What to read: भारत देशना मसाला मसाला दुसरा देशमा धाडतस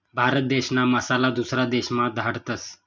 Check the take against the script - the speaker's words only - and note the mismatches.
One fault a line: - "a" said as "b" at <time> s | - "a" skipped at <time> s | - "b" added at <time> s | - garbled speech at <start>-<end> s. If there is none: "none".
- "मसाला" skipped at 1.3 s